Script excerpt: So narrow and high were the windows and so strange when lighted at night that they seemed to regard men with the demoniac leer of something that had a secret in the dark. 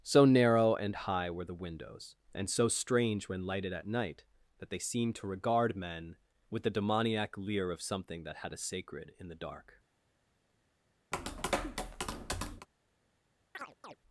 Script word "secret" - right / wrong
wrong